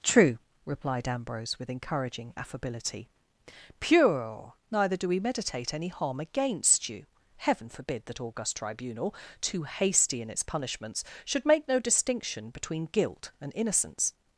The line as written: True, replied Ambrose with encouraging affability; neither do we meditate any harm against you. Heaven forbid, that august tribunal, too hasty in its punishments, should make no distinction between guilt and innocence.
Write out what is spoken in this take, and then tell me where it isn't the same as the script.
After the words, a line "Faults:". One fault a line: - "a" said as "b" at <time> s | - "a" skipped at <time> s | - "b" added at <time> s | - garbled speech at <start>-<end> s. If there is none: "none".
True, replied Ambrose with encouraging affability; pure neither do we meditate any harm against you. Heaven forbid, that august tribunal, too hasty in its punishments, should make no distinction between guilt and innocence.
Faults:
- "pure" added at 3.8 s